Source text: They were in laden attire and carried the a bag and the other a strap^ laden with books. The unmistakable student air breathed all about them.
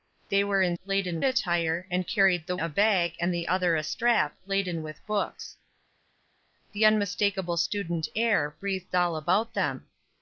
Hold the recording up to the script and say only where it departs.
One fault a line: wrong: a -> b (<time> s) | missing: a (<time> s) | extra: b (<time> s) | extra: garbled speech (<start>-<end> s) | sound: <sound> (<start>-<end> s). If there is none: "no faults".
no faults